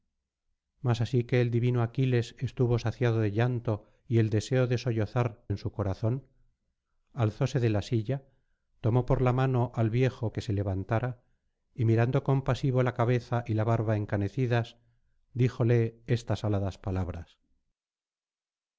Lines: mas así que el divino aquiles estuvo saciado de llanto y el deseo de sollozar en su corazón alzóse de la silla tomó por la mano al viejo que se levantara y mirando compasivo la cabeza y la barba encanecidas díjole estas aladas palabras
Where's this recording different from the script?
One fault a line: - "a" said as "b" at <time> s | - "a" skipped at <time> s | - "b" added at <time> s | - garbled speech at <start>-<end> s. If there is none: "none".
none